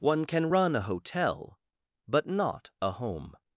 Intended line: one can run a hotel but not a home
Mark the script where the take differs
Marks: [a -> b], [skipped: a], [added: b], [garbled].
one can run a hotel but not a home